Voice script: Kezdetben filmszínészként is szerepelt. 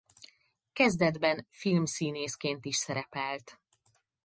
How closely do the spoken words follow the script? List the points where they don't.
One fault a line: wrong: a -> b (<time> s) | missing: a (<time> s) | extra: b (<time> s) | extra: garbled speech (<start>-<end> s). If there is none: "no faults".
no faults